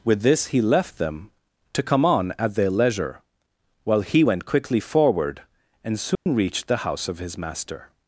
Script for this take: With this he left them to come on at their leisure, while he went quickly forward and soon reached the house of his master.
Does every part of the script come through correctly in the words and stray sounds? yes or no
no